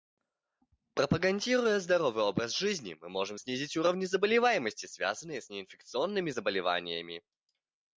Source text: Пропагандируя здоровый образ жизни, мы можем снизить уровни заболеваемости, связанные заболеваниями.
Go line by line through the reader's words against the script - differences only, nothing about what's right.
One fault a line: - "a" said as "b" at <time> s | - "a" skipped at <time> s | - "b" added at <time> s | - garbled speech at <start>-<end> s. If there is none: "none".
- "с неинфекционными" added at 5.4 s